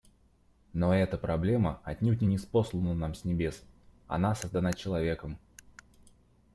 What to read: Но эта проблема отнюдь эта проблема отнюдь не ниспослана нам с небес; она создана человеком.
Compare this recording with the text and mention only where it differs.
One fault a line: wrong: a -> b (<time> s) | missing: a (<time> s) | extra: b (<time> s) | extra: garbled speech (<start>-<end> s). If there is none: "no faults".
missing: эта проблема отнюдь (2.2 s)